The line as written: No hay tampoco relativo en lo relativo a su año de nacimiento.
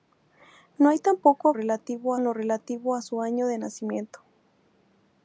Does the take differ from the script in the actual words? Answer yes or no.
no